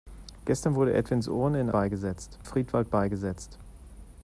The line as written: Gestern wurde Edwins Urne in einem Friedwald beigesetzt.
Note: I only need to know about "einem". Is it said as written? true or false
false